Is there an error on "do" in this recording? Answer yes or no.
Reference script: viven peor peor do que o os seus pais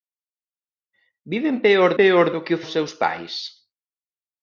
no